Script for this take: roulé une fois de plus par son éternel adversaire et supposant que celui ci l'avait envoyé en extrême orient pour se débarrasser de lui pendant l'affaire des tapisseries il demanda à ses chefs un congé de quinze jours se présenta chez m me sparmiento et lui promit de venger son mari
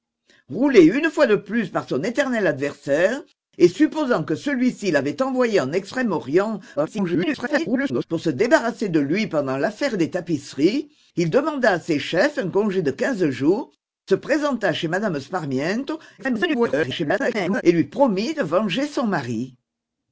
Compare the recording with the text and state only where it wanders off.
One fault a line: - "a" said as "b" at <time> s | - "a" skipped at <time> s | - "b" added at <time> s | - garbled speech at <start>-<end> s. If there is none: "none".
- garbled speech at 6.8-8.1 s
- garbled speech at 16.2-17.6 s